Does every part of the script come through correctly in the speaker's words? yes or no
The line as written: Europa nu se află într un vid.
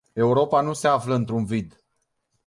yes